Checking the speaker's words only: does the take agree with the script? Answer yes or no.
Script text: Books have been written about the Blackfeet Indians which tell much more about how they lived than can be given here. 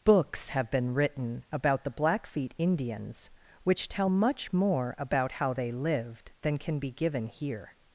yes